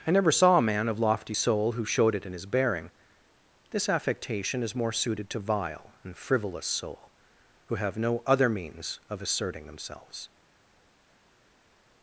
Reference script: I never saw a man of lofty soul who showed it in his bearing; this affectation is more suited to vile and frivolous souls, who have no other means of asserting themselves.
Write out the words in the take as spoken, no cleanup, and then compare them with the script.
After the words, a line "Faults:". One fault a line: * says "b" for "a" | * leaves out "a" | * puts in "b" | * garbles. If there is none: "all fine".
I never saw a man of lofty soul who showed it in his bearing; this affectation is more suited to vile and frivolous soul, who have no other means of asserting themselves.
Faults:
* says "soul" for "souls"